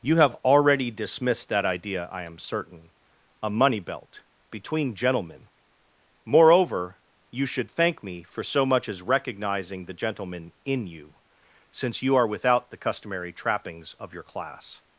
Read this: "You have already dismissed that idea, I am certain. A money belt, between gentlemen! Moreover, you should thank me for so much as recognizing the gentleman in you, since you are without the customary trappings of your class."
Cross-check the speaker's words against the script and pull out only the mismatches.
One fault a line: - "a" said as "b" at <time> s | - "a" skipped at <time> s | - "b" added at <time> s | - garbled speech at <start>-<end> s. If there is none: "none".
none